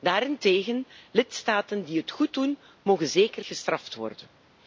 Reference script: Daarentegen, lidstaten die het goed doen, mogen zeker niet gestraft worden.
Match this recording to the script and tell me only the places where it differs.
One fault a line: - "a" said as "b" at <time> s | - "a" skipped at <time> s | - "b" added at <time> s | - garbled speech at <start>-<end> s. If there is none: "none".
- "niet" skipped at 3.4 s